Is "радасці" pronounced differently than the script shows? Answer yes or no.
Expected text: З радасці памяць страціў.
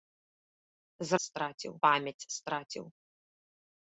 yes